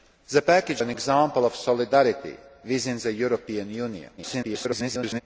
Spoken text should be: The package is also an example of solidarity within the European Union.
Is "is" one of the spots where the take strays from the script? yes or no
yes